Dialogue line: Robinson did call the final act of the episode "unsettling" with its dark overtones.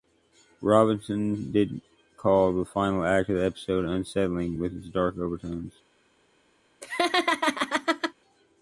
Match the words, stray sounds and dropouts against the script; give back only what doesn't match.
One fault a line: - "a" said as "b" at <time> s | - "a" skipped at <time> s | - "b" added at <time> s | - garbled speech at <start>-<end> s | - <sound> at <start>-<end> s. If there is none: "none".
- laugh at 6.8-8.1 s